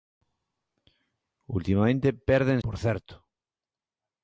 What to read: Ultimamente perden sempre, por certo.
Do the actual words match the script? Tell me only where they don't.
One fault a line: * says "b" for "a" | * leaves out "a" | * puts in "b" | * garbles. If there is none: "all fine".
* leaves out "sempre"